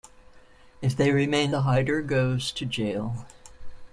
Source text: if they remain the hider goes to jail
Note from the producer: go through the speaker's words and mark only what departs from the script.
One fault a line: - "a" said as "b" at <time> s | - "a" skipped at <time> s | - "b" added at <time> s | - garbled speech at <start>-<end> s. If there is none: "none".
none